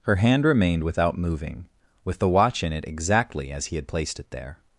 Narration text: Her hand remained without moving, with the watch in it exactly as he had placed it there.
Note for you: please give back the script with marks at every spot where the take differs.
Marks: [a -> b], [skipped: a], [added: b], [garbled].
Her hand remained without moving, with the watch in it exactly as he had placed it there.